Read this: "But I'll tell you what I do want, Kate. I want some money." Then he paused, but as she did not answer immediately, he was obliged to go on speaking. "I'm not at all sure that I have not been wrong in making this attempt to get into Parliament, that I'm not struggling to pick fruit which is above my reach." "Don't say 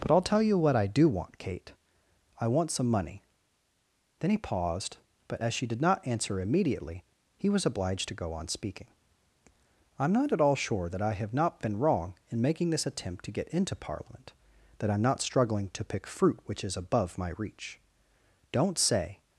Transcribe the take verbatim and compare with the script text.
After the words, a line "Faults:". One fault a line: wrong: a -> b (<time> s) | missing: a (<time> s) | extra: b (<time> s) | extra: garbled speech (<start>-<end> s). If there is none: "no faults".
"But I'll tell you what I do want, Kate. I want some money." Then he paused, but as she did not answer immediately, he was obliged to go on speaking. "I'm not at all sure that I have not been wrong in making this attempt to get into Parliament, that I'm not struggling to pick fruit which is above my reach." "Don't say
Faults:
no faults